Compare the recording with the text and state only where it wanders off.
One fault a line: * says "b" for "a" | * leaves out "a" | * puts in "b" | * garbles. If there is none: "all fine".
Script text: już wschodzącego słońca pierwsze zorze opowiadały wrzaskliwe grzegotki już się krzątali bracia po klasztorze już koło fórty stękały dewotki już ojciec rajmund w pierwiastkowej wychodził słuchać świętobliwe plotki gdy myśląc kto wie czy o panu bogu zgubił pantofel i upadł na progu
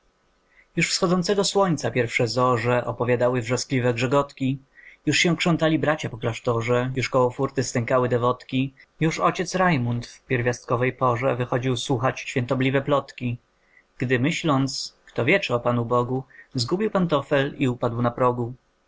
* puts in "porze"